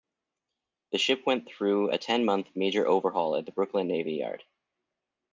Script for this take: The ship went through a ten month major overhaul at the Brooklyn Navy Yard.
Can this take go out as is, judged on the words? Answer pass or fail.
pass